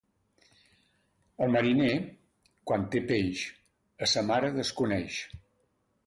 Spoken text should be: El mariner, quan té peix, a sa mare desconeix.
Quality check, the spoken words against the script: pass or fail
pass